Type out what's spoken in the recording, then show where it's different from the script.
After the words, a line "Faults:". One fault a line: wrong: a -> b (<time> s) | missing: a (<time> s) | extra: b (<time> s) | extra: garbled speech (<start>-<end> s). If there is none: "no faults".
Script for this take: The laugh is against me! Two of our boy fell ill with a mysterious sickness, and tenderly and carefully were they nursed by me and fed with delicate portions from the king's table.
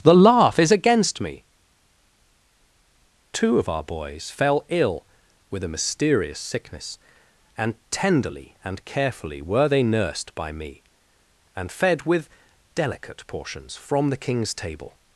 The laugh is against me! Two of our boys fell ill with a mysterious sickness, and tenderly and carefully were they nursed by me and fed with delicate portions from the king's table.
Faults:
wrong: boy -> boys (3.8 s)